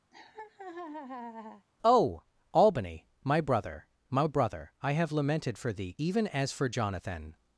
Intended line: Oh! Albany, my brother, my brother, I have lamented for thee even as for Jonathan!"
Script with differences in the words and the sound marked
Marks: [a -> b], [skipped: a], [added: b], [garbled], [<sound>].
[laugh] Oh! Albany, my brother, my brother, I have lamented for thee even as for Jonathan!"